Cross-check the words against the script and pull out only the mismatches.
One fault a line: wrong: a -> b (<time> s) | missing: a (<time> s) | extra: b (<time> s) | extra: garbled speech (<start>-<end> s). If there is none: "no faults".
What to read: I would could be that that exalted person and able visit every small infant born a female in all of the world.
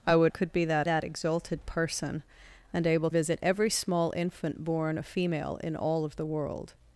no faults